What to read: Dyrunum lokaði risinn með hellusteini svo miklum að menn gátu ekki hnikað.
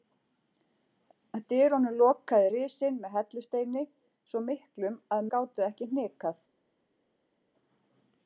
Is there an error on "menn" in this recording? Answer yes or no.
yes